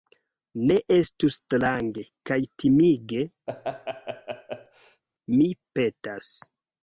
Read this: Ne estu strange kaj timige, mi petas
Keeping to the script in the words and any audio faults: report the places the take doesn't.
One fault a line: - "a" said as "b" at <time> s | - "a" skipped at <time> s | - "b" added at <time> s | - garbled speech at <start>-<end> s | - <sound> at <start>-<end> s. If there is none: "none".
- laugh at 3.5-5.0 s